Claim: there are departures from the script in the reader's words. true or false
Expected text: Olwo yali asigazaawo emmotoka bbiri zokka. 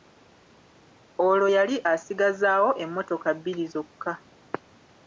false